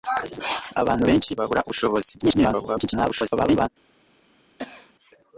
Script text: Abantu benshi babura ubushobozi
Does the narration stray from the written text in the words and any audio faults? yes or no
yes